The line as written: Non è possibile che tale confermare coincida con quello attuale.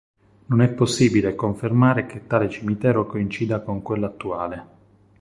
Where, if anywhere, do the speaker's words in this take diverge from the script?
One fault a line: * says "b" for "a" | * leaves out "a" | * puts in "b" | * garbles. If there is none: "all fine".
* puts in "confermare"
* says "cimitero" for "confermare"